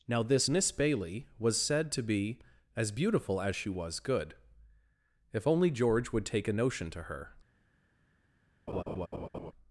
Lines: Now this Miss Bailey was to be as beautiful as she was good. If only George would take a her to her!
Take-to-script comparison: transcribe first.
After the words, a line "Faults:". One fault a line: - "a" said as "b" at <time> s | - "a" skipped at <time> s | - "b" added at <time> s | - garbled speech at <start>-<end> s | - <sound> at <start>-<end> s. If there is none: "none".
Now this Miss Bailey was said to be as beautiful as she was good. If only George would take a notion to her!
Faults:
- "said" added at 1.6 s
- "her" said as "notion" at 6.5 s
- laugh at 8.7-9.5 s